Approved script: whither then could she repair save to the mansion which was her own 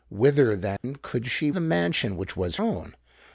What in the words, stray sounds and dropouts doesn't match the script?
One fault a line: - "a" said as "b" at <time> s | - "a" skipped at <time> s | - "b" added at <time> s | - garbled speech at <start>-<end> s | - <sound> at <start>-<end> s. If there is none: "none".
- dropout at 0.8-0.8 s
- "repair save to" skipped at 1.5 s
- "her" skipped at 2.6 s